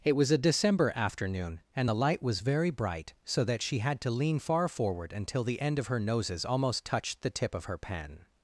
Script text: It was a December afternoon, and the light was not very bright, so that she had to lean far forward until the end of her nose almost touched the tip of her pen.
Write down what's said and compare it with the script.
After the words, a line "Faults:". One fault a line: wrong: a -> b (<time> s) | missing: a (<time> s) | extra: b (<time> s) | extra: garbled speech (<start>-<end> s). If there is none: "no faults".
It was a December afternoon, and the light was very bright, so that she had to lean far forward until the end of her noses almost touched the tip of her pen.
Faults:
missing: not (2.4 s)
wrong: nose -> noses (6.0 s)